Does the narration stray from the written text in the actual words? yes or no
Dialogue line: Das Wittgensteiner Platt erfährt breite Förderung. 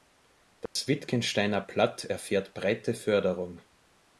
no